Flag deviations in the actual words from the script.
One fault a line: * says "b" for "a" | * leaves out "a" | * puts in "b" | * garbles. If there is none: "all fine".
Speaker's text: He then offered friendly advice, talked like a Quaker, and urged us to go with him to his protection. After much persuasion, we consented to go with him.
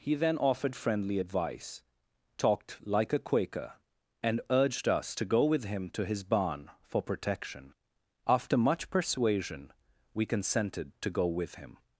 * puts in "barn for"